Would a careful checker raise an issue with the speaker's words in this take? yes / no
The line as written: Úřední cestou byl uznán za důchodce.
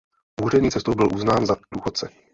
no